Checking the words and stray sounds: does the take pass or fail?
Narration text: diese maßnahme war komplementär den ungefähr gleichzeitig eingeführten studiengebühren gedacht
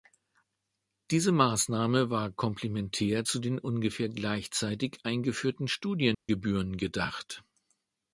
fail